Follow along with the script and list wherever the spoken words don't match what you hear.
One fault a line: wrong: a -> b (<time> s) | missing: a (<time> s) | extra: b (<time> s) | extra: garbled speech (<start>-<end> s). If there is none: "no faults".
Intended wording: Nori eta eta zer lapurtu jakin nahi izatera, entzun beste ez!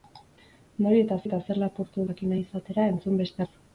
no faults